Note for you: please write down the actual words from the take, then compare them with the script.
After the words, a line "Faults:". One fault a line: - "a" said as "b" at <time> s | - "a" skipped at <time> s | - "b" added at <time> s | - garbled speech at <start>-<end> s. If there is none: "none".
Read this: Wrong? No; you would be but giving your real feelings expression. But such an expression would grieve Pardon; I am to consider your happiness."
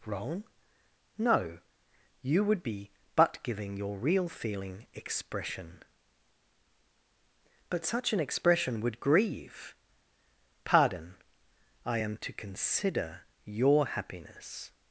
Wrong? No; you would be but giving your real feeling expression. But such an expression would grieve Pardon; I am to consider your happiness."
Faults:
- "feelings" said as "feeling" at 4.3 s